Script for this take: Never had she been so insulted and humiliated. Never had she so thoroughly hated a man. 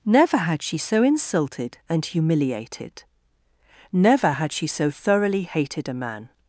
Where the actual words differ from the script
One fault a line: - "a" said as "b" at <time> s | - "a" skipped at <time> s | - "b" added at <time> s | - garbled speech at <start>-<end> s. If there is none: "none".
- "been" skipped at 0.8 s